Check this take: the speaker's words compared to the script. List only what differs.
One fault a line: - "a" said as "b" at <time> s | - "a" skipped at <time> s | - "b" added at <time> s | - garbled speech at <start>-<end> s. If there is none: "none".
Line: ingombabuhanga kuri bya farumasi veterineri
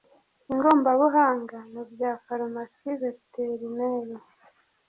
- "kuri" said as "mu" at 1.7 s